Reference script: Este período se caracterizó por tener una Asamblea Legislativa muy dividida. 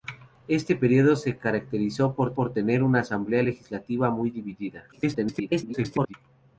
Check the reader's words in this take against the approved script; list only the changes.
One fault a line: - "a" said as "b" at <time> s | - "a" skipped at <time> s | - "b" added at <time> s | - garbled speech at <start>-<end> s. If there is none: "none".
- "por" added at 2.3 s
- garbled speech at 4.9-6.1 s